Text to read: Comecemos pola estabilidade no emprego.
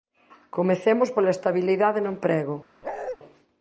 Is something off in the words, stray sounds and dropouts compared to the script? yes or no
yes